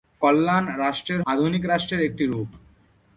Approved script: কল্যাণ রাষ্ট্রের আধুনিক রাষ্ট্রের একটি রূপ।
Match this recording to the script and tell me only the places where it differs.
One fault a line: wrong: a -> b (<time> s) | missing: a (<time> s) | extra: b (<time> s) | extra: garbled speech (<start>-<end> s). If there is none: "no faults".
no faults